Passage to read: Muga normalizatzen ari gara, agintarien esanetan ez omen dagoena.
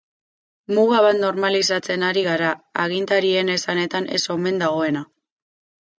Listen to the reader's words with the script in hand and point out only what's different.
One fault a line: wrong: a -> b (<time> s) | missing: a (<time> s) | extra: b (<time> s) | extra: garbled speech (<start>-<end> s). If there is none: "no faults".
extra: bat (1.1 s)